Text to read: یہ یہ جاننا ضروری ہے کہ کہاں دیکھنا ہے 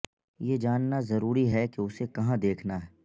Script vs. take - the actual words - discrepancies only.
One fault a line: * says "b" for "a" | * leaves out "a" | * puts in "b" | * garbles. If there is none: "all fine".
* leaves out "یہ"
* puts in "اسے"